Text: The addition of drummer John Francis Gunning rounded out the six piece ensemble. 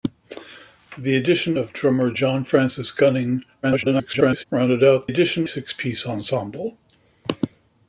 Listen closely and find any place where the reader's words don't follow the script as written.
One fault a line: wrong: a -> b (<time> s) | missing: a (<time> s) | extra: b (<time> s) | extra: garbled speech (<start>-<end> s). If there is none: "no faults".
extra: garbled speech (3.6-4.4 s)
wrong: the -> addition (5.1 s)